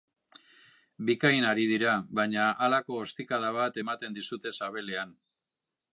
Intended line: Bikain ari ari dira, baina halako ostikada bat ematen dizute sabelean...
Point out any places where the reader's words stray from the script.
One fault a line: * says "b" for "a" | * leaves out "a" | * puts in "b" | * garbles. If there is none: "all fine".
* leaves out "ari"